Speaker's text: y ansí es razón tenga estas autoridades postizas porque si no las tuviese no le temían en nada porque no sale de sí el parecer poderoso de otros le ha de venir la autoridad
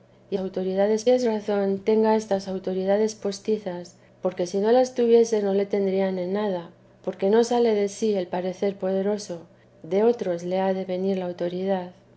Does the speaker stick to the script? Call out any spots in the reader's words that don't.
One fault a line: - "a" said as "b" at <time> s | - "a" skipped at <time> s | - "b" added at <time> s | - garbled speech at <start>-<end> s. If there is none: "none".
- "ansí" said as "autoridades" at 0.4 s